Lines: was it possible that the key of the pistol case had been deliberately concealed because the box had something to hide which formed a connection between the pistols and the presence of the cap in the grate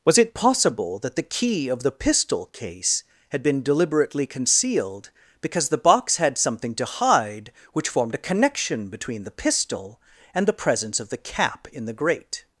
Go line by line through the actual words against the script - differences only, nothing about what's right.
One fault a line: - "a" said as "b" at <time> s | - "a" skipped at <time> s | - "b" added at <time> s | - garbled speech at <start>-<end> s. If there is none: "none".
- "pistols" said as "pistol" at 9.3 s